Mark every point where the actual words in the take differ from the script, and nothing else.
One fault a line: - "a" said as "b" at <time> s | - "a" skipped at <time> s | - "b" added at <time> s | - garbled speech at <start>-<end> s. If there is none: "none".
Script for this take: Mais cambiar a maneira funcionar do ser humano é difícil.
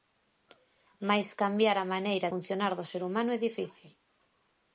none